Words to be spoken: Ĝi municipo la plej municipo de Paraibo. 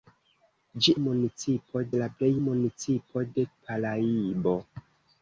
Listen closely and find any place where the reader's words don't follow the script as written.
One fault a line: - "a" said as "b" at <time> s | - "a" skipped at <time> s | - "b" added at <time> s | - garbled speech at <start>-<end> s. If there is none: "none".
none